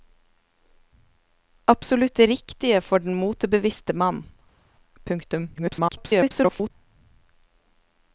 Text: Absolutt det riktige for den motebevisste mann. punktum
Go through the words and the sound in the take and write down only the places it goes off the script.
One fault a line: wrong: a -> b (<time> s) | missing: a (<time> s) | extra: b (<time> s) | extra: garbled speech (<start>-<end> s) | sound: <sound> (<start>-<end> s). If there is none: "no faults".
extra: garbled speech (5.5-6.7 s)